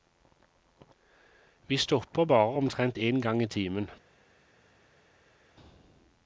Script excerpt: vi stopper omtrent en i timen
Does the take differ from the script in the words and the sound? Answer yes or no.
yes